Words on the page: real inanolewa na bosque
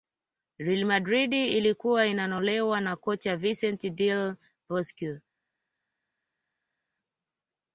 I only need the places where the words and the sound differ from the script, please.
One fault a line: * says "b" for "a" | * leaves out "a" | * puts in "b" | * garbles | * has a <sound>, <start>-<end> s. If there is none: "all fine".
* puts in "madrid ilikuwa"
* puts in "kocha vincent del"